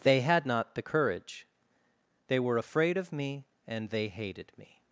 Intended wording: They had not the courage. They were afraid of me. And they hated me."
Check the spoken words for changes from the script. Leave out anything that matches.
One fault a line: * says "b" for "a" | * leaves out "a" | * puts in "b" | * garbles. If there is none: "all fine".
all fine